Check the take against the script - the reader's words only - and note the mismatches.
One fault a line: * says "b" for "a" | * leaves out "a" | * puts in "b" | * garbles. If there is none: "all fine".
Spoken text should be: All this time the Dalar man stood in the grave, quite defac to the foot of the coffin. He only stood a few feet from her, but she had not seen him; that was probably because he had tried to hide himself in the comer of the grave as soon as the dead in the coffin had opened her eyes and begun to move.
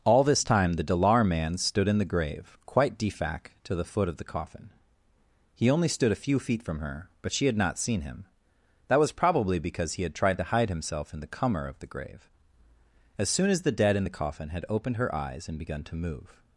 all fine